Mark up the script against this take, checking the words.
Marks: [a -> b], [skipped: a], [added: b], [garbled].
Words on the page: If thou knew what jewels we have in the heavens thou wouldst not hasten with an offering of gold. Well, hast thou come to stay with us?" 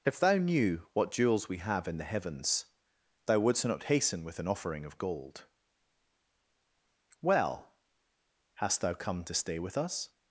If thou knew what jewels we have in the heavens thou wouldst not hasten with an offering of gold. Well, hast thou come to stay with us?"